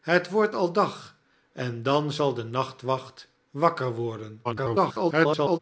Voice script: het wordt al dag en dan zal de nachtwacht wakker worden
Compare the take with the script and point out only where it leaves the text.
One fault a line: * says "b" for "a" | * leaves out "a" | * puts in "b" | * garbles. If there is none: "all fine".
* garbles